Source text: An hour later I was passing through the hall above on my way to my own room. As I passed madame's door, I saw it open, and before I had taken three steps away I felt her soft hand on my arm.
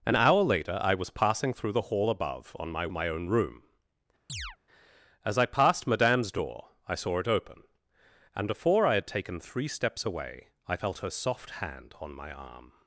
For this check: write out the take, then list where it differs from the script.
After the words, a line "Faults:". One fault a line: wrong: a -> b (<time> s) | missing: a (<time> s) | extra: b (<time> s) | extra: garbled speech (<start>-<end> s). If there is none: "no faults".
An hour later I was passing through the hall above on my my own room. As I passed madame's door, I saw it open, and before I had taken three steps away I felt her soft hand on my arm.
Faults:
missing: way to (2.9 s)